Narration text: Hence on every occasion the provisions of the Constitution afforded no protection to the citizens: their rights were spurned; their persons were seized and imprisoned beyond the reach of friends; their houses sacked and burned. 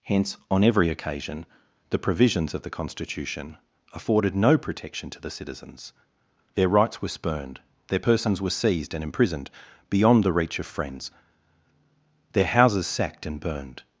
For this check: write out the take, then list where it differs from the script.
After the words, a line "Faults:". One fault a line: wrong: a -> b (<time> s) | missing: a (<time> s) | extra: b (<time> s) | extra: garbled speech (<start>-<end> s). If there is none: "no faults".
Hence on every occasion the provisions of the Constitution afforded no protection to the citizens: their rights were spurned; their persons were seized and imprisoned beyond the reach of friends; their houses sacked and burned.
Faults:
no faults